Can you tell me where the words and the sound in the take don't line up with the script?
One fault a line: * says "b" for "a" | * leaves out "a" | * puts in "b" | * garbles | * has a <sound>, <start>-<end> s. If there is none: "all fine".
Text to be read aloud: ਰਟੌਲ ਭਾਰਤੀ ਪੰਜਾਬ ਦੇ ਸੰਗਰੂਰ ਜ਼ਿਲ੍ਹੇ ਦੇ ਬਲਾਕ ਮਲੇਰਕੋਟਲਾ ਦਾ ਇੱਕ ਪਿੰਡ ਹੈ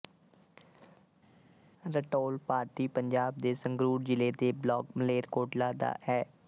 * leaves out "ਇੱਕ ਪਿੰਡ"